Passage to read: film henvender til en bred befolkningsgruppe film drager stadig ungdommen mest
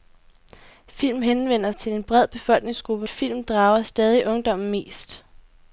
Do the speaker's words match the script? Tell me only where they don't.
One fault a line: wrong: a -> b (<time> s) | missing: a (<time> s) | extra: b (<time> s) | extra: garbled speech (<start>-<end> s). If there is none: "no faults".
no faults